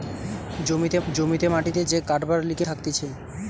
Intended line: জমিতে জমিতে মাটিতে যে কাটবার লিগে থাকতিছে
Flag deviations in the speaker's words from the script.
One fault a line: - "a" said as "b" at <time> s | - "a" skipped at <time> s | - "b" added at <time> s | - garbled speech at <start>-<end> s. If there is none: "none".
none